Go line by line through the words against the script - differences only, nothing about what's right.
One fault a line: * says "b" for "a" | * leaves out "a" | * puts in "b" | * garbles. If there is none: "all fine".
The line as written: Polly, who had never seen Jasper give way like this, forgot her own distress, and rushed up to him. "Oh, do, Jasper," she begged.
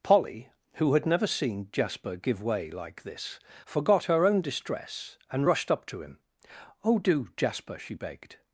all fine